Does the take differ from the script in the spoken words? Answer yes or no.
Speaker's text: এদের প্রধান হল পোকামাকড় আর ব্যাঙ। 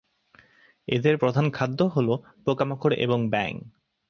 yes